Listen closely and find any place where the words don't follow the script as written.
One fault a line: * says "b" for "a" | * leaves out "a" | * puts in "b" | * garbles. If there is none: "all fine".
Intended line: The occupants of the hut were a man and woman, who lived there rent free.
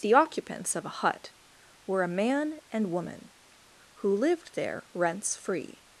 * says "a" for "the"
* says "rents" for "rent"